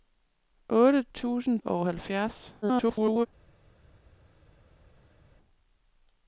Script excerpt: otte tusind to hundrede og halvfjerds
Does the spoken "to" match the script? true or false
false